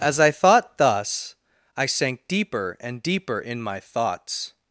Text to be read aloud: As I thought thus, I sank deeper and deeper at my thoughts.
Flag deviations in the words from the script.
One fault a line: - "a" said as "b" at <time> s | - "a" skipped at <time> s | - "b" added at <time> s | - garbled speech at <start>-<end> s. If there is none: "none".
- "at" said as "in" at 3.4 s